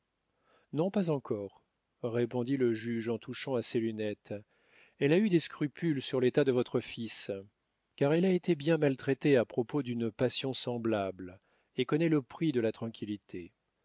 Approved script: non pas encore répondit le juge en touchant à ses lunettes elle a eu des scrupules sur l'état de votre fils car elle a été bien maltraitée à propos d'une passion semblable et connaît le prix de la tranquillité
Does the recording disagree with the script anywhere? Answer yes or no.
no